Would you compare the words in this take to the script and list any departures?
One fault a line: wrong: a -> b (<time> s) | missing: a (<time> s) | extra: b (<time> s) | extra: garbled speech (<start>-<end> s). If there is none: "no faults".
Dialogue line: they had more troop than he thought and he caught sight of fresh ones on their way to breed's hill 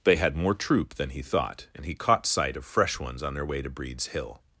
no faults